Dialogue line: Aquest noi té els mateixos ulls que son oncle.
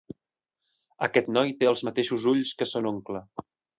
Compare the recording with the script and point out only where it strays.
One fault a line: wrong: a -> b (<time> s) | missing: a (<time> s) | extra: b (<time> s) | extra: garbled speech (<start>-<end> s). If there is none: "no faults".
no faults